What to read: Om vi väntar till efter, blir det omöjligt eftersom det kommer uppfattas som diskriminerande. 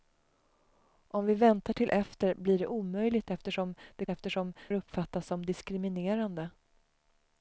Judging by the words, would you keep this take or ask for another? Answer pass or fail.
fail